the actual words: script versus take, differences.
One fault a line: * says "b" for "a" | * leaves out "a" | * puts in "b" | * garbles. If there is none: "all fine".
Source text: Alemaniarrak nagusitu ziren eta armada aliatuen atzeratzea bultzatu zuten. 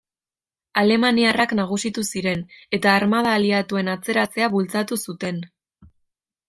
all fine